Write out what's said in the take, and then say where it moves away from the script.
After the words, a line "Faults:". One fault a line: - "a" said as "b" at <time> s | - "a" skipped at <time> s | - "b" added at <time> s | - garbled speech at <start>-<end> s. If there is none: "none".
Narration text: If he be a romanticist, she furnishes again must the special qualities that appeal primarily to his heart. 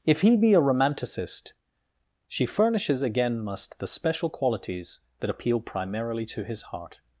If he be a romanticist, she furnishes again must the special qualities that appeal primarily to his heart.
Faults:
none